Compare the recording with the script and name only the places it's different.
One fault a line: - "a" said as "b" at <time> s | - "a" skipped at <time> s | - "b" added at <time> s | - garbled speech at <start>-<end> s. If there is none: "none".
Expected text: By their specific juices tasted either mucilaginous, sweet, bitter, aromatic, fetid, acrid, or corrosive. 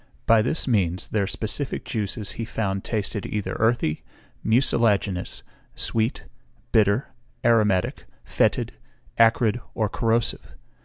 - "this means" added at 0.4 s
- "he found" added at 2.3 s
- "earthy" added at 3.6 s